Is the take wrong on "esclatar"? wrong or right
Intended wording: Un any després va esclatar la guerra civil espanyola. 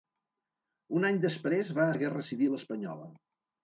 wrong